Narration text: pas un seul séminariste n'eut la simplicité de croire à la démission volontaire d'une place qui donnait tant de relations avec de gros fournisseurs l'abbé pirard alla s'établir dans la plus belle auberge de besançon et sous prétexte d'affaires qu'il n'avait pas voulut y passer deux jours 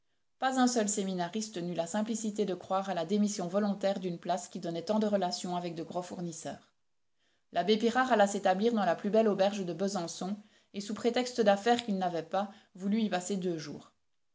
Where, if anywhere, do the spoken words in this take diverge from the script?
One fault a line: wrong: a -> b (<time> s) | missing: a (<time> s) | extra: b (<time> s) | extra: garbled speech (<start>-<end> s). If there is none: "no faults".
no faults